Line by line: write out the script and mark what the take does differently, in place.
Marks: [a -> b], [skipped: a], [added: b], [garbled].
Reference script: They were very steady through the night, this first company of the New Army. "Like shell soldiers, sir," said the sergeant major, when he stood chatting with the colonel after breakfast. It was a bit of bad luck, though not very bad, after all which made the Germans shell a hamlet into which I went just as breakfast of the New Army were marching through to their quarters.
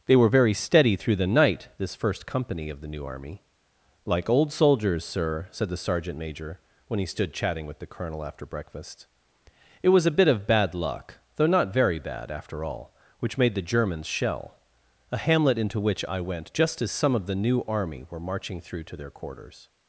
They were very steady through the night, this first company of the New Army. "Like [shell -> old] soldiers, sir," said the sergeant major, when he stood chatting with the colonel after breakfast. It was a bit of bad luck, though not very bad, after all which made the Germans shell a hamlet into which I went just as [breakfast -> some] of the New Army were marching through to their quarters.